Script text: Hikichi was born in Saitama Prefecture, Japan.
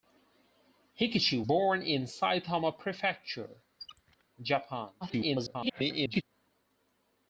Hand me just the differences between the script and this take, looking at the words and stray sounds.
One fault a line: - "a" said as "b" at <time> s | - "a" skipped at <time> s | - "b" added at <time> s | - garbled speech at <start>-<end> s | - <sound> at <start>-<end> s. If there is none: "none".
- "was" skipped at 1.4 s
- squeak at 3.8-4.2 s
- garbled speech at 5.0-6.2 s